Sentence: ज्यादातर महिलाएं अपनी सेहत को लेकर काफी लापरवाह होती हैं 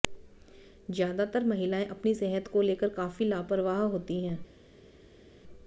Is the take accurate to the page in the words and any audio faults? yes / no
yes